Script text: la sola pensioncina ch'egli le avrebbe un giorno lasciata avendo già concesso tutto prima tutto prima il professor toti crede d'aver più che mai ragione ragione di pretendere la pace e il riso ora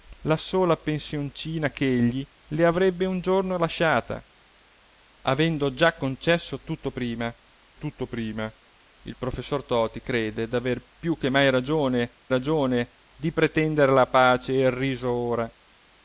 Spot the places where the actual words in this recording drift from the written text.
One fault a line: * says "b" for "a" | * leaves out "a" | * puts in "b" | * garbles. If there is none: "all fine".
all fine